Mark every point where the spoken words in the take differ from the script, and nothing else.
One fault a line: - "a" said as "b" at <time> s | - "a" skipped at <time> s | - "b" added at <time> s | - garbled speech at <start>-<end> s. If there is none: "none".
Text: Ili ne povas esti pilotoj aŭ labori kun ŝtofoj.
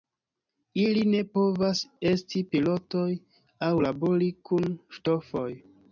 none